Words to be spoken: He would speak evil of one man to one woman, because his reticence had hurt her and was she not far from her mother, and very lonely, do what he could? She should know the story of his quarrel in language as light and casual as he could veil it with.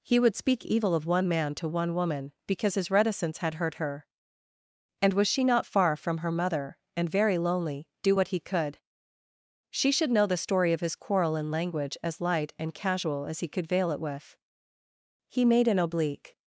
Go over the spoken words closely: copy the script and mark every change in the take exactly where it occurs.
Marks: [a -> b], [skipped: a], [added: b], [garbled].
He would speak evil of one man to one woman, because his reticence had hurt her and was she not far from her mother, and very lonely, do what he could? She should know the story of his quarrel in language as light and casual as he could veil it with. [added: He made an oblique]